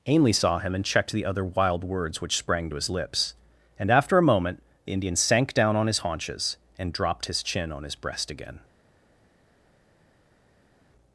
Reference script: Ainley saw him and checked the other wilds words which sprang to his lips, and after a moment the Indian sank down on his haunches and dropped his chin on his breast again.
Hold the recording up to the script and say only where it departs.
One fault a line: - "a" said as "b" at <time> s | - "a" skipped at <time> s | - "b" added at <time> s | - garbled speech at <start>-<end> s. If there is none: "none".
- "wilds" said as "wild" at 1.4 s